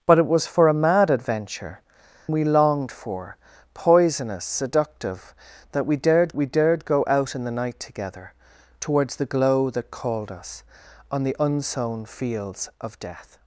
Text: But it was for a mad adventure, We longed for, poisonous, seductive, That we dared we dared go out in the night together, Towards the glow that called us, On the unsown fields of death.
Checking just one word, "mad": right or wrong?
right